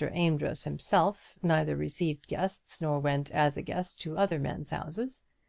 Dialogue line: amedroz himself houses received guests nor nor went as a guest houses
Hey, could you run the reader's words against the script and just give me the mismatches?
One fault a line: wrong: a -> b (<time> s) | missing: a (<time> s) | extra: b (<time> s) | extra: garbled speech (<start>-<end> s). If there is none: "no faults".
wrong: houses -> neither (1.4 s)
missing: nor (3.0 s)
extra: to other men's (4.0 s)